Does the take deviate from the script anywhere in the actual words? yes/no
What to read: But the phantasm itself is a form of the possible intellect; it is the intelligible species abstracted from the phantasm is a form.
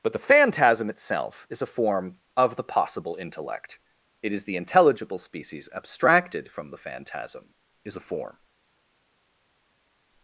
no